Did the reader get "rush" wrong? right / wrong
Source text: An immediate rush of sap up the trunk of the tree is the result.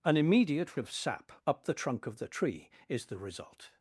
wrong